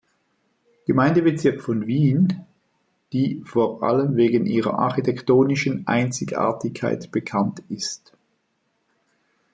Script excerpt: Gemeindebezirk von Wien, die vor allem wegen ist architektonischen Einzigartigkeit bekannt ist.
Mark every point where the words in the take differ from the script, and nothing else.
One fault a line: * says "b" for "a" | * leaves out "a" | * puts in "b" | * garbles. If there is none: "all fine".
* says "ihrer" for "ist"